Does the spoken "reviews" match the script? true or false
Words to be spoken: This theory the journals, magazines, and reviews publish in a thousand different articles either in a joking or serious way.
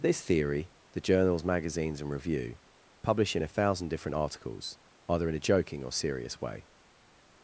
false